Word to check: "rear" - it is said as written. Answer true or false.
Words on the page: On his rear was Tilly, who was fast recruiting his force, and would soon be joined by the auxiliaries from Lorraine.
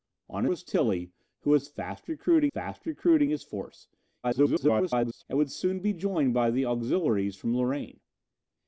false